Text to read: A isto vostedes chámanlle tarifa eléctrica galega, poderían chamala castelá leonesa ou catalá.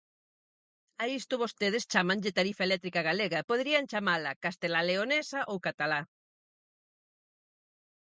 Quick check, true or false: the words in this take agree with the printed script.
true